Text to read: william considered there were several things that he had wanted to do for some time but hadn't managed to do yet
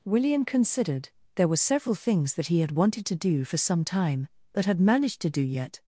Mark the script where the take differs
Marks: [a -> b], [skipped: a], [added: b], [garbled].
william considered there were several things that he had wanted to do for some time but [hadn't -> had] managed to do yet